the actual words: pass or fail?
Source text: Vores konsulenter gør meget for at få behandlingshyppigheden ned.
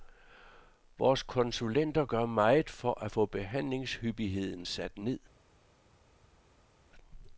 fail